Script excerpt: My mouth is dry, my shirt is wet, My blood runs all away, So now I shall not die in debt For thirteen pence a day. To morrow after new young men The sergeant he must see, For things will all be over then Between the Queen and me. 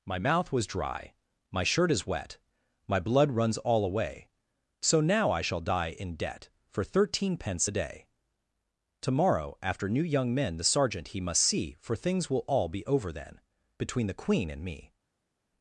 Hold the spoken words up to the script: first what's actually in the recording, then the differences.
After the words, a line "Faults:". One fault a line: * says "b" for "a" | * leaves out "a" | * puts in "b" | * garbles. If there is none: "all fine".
My mouth was dry, my shirt is wet, My blood runs all away, So now I shall die in debt For thirteen pence a day. To morrow after new young men The sergeant he must see, For things will all be over then Between the Queen and me.
Faults:
* says "was" for "is"
* leaves out "not"